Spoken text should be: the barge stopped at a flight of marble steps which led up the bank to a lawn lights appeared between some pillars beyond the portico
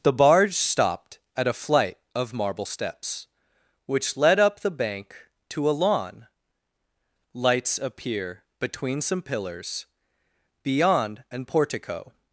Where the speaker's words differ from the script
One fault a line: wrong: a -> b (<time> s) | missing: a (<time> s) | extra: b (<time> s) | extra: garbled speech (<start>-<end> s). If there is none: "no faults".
wrong: appeared -> appear (7.8 s)
wrong: the -> an (11.3 s)